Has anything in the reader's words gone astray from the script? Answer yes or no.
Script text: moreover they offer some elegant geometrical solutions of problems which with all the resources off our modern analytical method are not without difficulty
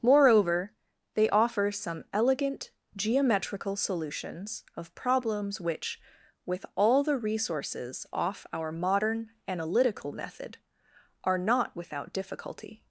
no